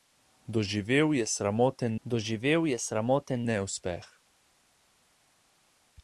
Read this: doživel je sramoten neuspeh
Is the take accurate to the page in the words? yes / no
no